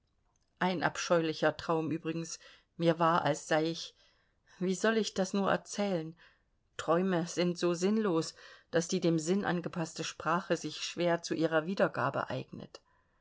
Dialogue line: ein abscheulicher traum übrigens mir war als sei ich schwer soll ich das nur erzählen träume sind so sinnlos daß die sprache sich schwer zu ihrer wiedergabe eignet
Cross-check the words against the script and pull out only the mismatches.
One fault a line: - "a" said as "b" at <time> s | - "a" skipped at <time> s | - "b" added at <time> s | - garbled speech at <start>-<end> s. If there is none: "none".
- "schwer" said as "wie" at 4.6 s
- "dem sinn angepaßte" added at 9.0 s